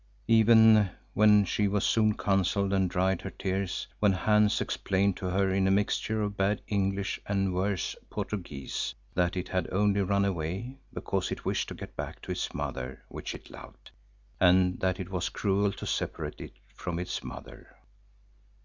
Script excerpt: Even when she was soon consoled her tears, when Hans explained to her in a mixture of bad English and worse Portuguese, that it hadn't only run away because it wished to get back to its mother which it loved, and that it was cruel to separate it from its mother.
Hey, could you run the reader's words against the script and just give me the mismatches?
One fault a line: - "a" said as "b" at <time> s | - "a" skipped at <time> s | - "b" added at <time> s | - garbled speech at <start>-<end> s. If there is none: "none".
- "and dried" added at 2.7 s
- "hadn't" said as "had" at 9.5 s